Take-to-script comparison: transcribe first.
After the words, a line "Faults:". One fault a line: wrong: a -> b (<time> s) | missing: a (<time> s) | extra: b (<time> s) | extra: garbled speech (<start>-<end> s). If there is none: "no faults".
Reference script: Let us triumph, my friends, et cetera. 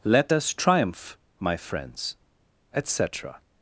Let us triumph, my friends, et cetera.
Faults:
no faults